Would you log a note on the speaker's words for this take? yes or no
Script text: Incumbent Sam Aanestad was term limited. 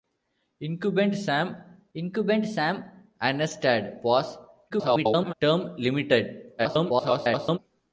yes